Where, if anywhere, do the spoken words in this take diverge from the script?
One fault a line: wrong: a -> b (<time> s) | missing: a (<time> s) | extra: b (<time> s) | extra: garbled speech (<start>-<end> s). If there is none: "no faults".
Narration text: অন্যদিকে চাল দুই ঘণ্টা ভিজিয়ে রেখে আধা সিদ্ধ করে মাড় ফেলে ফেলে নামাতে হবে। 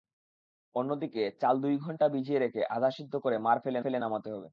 no faults